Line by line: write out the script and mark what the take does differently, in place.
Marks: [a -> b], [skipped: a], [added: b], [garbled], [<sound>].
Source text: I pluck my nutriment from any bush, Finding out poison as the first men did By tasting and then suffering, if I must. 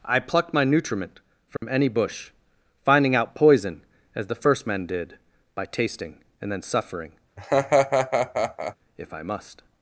I [pluck -> plucked] my nutriment from [dropout] any bush, Finding out poison as the first men did By tasting and then suffering, [laugh] if I must.